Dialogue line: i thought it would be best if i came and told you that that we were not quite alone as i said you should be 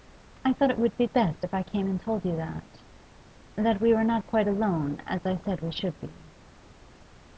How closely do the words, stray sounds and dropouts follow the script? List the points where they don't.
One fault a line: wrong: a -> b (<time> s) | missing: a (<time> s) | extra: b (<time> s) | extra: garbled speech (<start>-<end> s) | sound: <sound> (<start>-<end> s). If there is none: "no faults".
wrong: you -> we (5.6 s)